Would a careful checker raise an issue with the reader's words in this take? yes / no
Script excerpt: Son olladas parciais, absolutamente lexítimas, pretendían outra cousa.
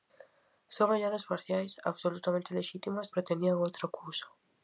no